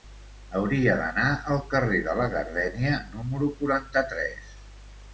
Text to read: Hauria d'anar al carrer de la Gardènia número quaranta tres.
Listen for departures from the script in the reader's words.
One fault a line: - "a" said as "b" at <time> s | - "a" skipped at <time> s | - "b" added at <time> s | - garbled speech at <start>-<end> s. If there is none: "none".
none